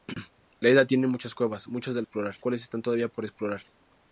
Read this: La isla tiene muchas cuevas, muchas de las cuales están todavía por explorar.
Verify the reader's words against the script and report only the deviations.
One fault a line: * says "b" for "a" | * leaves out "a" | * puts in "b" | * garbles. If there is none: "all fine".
* says "explorar" for "las"